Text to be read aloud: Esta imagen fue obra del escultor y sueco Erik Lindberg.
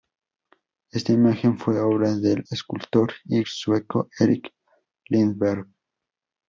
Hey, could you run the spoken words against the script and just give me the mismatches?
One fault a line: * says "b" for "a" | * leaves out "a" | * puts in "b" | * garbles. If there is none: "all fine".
all fine